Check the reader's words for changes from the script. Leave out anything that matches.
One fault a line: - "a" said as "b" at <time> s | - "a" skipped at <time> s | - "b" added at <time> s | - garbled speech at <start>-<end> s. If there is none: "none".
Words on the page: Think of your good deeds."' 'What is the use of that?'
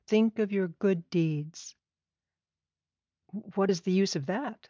none